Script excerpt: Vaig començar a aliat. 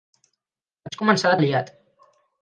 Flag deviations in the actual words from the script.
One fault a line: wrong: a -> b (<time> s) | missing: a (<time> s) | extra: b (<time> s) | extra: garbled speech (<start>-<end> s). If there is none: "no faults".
no faults